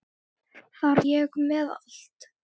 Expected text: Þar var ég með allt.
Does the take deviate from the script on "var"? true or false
true